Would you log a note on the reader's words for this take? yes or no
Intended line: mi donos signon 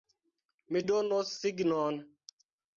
no